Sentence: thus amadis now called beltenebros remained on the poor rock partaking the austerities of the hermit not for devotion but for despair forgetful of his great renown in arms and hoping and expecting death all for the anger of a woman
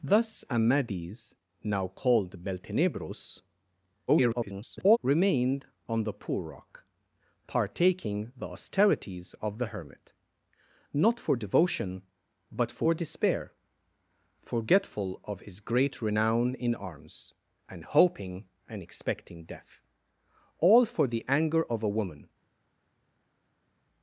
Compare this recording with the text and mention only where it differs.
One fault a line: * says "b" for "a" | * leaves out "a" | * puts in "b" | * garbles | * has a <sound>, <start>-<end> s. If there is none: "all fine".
* garbles